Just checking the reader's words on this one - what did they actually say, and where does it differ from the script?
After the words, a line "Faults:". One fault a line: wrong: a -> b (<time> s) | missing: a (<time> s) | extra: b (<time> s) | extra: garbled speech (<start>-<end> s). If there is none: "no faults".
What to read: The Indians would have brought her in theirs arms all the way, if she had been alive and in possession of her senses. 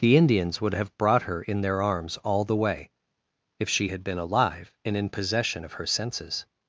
The Indians would have brought her in their arms all the way, if she had been alive and in possession of her senses.
Faults:
wrong: theirs -> their (1.6 s)